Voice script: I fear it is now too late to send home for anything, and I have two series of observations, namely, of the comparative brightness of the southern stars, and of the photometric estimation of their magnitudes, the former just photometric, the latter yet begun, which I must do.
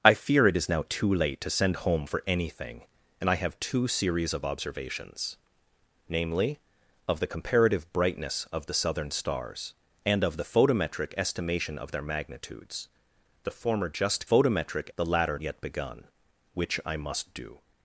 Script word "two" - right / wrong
right